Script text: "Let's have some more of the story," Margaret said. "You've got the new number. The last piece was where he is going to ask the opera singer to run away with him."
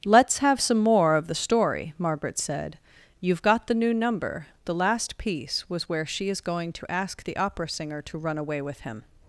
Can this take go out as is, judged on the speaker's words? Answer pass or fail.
fail